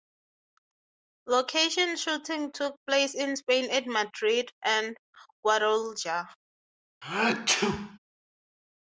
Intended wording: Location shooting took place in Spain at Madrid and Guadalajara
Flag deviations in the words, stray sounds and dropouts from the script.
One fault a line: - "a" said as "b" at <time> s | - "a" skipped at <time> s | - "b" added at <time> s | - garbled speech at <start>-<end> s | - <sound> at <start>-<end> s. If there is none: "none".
- sneeze at 7.0-8.0 s